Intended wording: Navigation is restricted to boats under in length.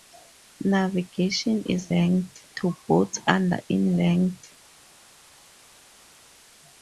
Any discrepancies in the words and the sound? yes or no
yes